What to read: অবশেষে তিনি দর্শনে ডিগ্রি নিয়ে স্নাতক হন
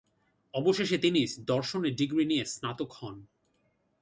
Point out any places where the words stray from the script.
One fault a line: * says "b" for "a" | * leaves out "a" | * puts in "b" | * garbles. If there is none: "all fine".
all fine